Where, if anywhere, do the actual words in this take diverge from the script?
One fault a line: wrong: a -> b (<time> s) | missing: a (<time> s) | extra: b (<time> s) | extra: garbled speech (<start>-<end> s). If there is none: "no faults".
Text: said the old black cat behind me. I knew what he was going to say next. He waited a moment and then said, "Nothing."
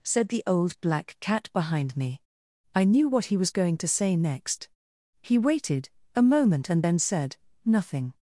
no faults